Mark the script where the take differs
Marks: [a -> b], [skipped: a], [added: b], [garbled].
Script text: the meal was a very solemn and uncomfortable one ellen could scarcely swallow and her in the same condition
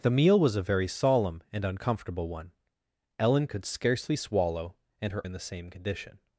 the meal was a very solemn and uncomfortable one ellen could scarcely swallow and her in the same condition